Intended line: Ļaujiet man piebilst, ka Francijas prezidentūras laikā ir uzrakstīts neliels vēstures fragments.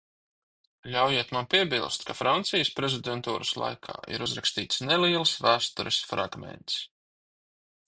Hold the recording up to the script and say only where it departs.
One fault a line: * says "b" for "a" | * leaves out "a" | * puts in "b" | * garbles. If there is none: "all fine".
all fine